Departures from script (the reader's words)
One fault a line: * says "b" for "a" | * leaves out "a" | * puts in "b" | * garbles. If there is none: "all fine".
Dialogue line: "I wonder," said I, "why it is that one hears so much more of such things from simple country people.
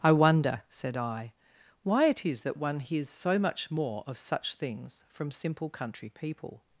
all fine